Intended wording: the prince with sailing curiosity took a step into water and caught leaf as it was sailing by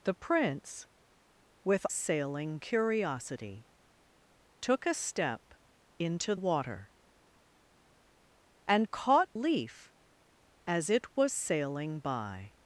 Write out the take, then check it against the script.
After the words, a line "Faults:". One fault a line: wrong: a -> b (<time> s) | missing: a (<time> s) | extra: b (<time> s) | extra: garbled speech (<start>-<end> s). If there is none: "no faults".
the prince with sailing curiosity took a step into water and caught leaf as it was sailing by
Faults:
no faults